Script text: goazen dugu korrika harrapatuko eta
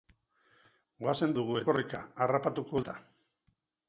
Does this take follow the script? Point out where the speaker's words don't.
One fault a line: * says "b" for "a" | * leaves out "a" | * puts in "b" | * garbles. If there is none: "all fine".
all fine